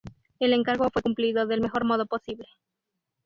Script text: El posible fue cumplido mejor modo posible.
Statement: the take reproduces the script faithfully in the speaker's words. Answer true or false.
false